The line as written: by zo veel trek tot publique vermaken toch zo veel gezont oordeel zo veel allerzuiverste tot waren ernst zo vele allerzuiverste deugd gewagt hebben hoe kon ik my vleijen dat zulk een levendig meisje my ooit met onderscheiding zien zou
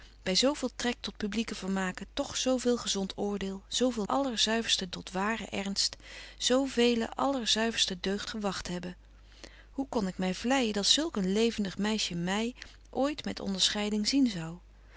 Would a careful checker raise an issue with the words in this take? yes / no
no